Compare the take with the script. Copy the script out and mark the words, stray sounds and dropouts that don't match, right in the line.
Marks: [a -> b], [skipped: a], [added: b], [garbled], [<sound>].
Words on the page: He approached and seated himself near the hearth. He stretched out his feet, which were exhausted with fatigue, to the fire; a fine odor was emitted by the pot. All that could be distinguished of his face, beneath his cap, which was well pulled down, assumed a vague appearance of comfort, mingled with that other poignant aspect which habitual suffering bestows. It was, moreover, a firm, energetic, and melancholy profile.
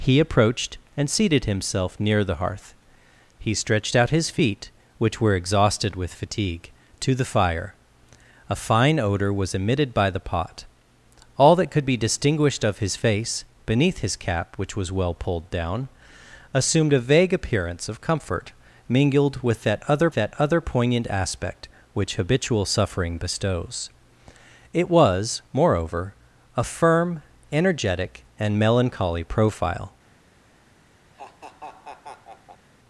He approached and seated himself near the hearth. He stretched out his feet, which were exhausted with fatigue, to the fire; a fine odor was emitted by the pot. All that could be distinguished of his face, beneath his cap, which was well pulled down, assumed a vague appearance of comfort, mingled with that other [added: that other] poignant aspect which habitual suffering bestows. It was, moreover, a firm, energetic, and melancholy profile. [laugh]